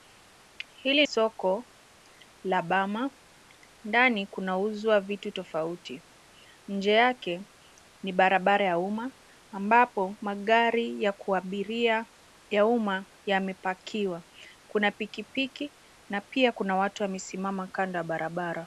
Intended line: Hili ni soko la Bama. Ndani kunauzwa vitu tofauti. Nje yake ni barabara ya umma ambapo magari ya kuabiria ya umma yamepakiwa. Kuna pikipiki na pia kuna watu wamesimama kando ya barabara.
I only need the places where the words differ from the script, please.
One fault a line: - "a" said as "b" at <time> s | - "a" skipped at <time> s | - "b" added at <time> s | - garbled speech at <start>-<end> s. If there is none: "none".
- "ni" skipped at 1.1 s